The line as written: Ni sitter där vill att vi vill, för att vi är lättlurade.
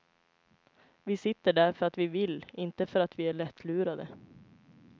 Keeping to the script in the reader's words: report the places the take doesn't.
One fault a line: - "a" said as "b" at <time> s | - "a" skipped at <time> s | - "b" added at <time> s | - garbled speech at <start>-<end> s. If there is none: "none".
- "Ni" said as "Vi" at 1.0 s
- "vill" said as "för" at 1.7 s
- "inte" added at 2.5 s